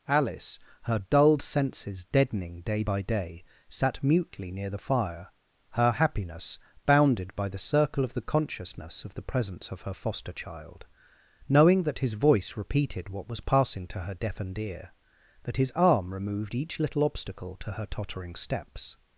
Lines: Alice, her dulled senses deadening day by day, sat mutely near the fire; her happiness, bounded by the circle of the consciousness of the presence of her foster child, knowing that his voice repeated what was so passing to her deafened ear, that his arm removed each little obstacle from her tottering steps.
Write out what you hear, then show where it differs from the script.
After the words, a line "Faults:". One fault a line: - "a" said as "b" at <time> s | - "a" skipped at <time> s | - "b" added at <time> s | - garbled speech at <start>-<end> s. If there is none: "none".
Alice, her dulled senses deadening day by day, sat mutely near the fire; her happiness, bounded by the circle of the consciousness of the presence of her foster child, knowing that his voice repeated what was passing to her deafened ear, that his arm removed each little obstacle to her tottering steps.
Faults:
- "so" skipped at 13.4 s
- "from" said as "to" at 17.6 s